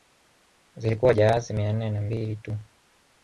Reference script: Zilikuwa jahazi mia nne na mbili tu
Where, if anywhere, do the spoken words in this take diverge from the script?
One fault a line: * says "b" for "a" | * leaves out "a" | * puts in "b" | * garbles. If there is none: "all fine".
all fine